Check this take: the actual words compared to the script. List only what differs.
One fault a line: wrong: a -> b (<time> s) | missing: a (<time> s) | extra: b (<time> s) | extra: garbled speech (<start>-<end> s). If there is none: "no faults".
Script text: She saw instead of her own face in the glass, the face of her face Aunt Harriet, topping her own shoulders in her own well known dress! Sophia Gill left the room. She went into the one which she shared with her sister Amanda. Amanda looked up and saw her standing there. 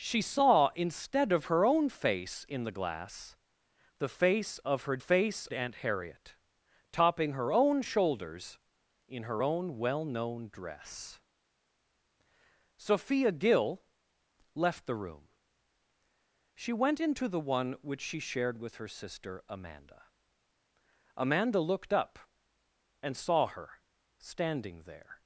no faults